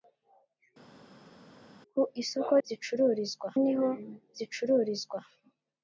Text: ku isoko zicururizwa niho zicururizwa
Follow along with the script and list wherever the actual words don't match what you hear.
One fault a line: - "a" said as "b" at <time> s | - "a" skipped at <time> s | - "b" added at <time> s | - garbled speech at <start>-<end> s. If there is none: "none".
none